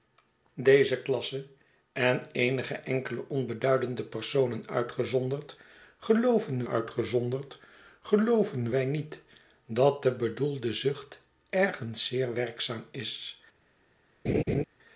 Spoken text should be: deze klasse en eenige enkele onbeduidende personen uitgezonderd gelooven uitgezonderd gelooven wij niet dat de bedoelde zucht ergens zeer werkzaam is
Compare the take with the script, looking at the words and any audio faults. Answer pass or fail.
fail